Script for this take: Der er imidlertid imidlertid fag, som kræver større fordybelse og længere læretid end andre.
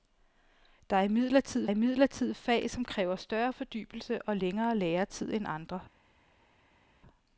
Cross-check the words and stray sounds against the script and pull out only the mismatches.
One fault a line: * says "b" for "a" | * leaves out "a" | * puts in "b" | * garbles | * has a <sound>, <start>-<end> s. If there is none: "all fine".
all fine